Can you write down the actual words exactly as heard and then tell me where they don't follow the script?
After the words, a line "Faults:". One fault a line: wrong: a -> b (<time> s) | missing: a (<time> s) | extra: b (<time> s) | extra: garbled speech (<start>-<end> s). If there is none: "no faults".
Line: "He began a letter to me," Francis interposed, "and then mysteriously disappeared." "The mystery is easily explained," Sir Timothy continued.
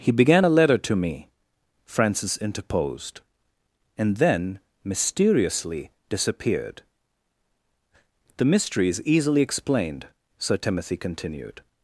"He began a letter to me," Francis interposed, "and then mysteriously disappeared." "The mystery is easily explained," Sir Timothy continued.
Faults:
no faults